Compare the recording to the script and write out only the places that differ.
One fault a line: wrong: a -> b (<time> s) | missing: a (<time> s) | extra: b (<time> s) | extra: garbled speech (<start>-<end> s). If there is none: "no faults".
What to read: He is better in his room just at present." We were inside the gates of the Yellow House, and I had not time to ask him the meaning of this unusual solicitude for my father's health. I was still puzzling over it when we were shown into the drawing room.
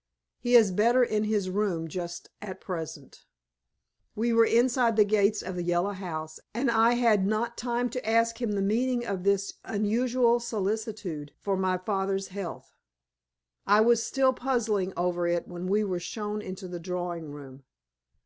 no faults